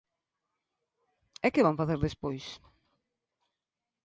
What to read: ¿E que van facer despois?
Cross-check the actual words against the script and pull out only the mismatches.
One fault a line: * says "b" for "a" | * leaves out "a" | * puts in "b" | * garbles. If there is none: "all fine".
all fine